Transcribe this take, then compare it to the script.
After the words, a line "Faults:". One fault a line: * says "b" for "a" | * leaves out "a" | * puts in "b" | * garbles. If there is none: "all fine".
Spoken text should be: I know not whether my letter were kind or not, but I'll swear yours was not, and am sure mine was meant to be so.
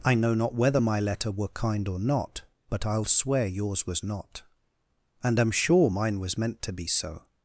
I know not whether my letter were kind or not, but I'll swear yours was not, and am sure mine was meant to be so.
Faults:
all fine